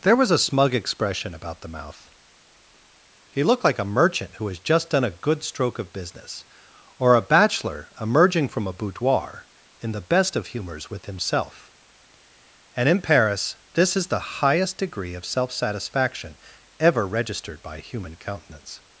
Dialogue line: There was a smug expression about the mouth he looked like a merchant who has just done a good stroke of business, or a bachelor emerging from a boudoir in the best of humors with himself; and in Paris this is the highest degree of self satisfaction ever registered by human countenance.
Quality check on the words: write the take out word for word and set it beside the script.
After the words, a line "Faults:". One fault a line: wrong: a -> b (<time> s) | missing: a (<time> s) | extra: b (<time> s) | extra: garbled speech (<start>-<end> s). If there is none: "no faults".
There was a smug expression about the mouth he looked like a merchant who has just done a good stroke of business, or a bachelor emerging from a boudoir in the best of humors with himself; and in Paris this is the highest degree of self satisfaction ever registered by human countenance.
Faults:
no faults